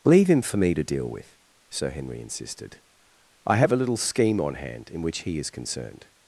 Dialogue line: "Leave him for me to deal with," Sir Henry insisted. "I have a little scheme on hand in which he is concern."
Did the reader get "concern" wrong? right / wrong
wrong